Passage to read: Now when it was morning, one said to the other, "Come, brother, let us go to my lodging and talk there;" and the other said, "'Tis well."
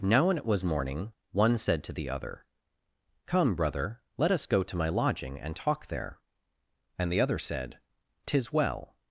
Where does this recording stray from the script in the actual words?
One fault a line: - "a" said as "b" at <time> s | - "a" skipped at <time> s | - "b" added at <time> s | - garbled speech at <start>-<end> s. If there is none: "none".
none